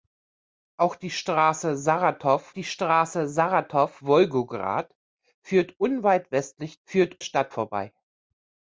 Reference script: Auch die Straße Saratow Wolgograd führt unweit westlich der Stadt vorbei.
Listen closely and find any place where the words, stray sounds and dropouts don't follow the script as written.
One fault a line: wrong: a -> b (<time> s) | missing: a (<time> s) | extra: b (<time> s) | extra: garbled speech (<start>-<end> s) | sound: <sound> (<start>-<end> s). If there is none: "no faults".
extra: die Straße Saratow (2.5 s)
wrong: der -> führt (6.8 s)